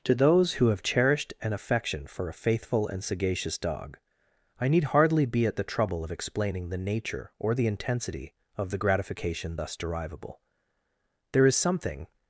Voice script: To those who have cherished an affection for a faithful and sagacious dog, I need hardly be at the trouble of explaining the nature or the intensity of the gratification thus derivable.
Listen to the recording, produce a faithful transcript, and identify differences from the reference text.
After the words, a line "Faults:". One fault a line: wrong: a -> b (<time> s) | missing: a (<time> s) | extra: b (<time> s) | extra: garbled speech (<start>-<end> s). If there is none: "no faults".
To those who have cherished an affection for a faithful and sagacious dog, I need hardly be at the trouble of explaining the nature or the intensity of the gratification thus derivable. There is something
Faults:
extra: There is something (11.3 s)